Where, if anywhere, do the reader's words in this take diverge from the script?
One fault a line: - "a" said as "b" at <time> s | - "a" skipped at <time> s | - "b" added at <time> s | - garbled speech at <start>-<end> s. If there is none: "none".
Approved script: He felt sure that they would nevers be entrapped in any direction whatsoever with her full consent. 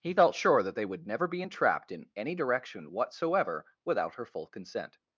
- "nevers" said as "never" at 1.1 s
- "with" said as "without" at 3.9 s